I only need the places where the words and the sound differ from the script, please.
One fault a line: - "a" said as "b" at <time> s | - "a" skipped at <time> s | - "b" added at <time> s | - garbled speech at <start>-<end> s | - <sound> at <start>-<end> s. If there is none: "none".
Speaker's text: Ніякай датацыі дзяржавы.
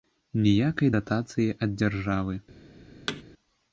- "ад" added at 1.7 s
- thud at 3.1-3.2 s